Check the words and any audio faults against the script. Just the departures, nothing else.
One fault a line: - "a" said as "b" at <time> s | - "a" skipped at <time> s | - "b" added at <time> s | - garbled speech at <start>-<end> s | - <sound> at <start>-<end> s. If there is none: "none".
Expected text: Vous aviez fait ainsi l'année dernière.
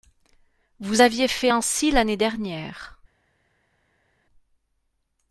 none